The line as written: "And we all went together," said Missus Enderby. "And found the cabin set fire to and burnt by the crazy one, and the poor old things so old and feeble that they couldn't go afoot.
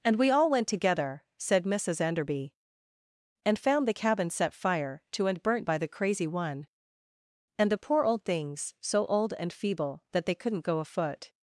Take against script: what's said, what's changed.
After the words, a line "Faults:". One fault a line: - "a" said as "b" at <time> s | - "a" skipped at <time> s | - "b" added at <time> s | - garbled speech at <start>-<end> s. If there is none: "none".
"And we all went together," said Missus Enderby. "And found the cabin set fire to and burnt by the crazy one, and the poor old things so old and feeble that they couldn't go afoot.
Faults:
none